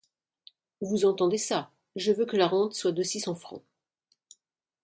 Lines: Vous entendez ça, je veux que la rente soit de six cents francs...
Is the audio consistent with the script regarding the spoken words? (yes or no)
yes